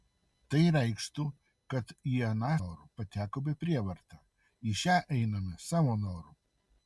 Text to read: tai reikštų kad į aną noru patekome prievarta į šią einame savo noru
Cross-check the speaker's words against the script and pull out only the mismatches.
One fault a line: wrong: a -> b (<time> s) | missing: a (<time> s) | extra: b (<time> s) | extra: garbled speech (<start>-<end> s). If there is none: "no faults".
no faults